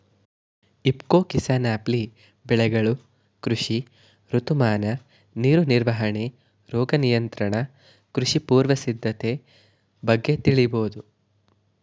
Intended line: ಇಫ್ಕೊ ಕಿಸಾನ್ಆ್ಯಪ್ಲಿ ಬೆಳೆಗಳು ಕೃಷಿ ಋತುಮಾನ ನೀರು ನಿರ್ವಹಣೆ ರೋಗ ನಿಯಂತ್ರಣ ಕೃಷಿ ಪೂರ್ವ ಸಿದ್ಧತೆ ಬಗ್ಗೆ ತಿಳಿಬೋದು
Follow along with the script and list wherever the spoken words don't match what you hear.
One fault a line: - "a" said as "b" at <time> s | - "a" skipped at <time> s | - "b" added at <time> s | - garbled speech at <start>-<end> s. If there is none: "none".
none